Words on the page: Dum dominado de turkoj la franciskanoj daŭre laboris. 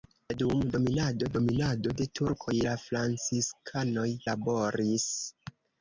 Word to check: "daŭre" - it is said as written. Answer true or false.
false